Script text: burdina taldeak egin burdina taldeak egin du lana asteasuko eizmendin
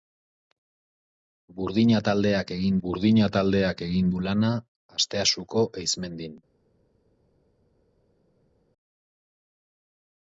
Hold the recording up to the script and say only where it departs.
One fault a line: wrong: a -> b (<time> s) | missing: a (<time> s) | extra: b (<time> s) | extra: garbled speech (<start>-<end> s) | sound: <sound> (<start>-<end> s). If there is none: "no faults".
no faults